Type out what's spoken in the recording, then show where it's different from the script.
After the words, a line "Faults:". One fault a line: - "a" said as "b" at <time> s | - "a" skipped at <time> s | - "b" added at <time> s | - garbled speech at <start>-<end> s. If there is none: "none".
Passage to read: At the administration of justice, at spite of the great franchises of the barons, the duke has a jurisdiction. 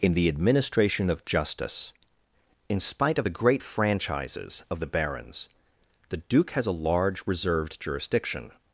In the administration of justice, in spite of the great franchises of the barons, the duke has a large reserved jurisdiction.
Faults:
- "At" said as "In" at 0.0 s
- "at" said as "in" at 2.7 s
- "large reserved" added at 6.7 s